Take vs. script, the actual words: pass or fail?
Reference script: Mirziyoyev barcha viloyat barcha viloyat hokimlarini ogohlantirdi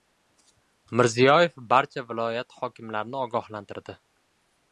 fail